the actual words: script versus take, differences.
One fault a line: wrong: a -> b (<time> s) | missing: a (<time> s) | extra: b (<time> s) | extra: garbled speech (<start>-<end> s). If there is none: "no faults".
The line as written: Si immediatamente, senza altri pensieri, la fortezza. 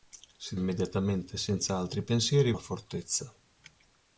no faults